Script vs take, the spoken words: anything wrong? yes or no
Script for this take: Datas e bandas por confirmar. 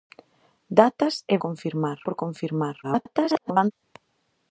yes